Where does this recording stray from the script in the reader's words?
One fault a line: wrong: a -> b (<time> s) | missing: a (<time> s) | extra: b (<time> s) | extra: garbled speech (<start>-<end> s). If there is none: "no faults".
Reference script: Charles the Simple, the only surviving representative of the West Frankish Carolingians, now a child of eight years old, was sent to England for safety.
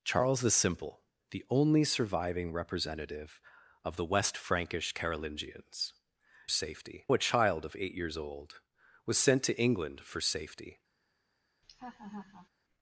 wrong: now -> safety (6.5 s)